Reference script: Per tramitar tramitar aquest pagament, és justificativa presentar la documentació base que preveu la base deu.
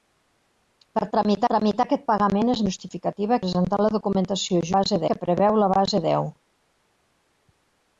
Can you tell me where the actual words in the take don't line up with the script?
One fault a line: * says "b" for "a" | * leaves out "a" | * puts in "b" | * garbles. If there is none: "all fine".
all fine